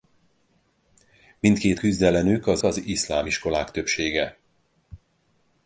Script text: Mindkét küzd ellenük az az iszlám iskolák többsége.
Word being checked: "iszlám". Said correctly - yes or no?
yes